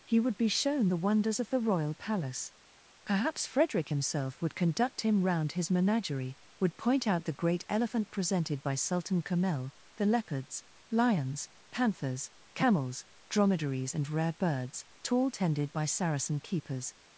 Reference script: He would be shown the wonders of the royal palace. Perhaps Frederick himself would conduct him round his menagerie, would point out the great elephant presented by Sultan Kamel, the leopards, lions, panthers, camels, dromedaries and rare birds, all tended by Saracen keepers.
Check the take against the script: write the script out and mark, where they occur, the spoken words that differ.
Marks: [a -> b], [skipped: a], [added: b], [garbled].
He would be shown the wonders of the royal palace. Perhaps Frederick himself would conduct him round his menagerie, would point out the great elephant presented by Sultan Kamel, the leopards, lions, panthers, camels, dromedaries and rare birds, [all -> tall] tended by Saracen keepers.